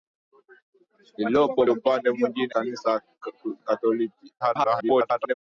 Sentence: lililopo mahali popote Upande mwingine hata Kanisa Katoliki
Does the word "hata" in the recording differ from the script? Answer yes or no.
yes